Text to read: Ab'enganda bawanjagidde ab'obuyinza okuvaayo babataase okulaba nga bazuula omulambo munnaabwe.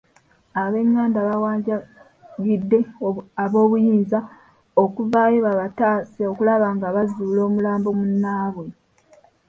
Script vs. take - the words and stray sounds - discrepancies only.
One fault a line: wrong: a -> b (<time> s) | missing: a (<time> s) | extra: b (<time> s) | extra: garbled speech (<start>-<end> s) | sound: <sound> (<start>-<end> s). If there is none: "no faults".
no faults